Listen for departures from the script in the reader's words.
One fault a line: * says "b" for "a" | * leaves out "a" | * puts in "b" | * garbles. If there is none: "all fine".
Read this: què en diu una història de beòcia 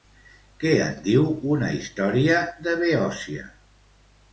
all fine